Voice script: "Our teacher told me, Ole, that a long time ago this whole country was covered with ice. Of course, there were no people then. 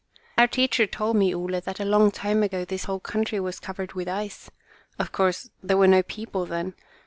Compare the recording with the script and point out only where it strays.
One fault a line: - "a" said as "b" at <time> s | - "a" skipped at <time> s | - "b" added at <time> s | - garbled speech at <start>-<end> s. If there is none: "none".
none